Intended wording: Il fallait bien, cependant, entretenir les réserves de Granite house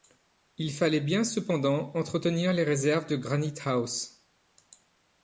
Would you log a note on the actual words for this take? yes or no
no